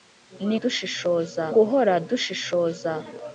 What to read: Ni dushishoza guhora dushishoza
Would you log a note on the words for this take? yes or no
no